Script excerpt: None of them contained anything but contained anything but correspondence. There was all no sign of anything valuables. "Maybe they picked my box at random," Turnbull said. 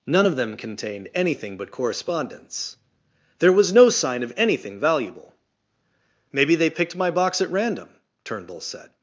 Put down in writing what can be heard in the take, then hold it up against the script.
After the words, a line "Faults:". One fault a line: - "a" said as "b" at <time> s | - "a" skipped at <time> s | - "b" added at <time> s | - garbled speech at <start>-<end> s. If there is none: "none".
None of them contained anything but correspondence. There was no sign of anything valuable. "Maybe they picked my box at random," Turnbull said.
Faults:
- "contained anything but" skipped at 1.7 s
- "all" skipped at 3.7 s
- "valuables" said as "valuable" at 4.8 s